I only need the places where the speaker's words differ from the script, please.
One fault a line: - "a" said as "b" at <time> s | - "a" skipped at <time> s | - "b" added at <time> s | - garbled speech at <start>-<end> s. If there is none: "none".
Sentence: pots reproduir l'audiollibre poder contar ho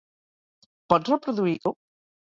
- "l'audiollibre poder contar" skipped at 1.5 s